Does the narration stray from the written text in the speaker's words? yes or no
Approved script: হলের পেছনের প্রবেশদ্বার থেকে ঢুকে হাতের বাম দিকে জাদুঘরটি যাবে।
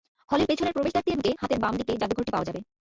yes